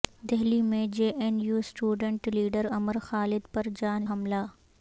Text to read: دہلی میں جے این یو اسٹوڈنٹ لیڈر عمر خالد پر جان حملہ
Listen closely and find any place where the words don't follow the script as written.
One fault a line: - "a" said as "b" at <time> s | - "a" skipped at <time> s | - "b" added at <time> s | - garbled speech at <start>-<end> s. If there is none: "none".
none